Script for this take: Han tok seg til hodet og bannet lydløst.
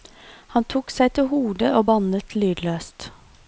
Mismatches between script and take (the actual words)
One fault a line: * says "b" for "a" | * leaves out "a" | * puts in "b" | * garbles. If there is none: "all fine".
all fine